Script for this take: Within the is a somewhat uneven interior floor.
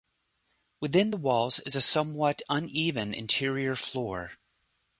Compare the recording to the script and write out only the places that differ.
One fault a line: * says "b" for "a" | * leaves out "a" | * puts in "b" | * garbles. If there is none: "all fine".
* puts in "walls"